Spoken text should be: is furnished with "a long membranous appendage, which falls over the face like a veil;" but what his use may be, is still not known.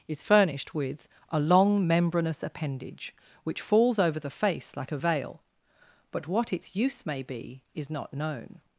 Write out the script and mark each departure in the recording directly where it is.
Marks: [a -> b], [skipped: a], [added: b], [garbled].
is furnished with "a long membranous appendage, which falls over the face like a veil;" but what [his -> its] use may be, is [skipped: still] not known.